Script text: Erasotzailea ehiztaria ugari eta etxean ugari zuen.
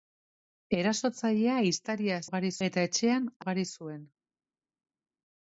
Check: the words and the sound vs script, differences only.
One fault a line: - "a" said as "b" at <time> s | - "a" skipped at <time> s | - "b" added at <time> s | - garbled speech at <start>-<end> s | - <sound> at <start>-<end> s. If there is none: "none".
none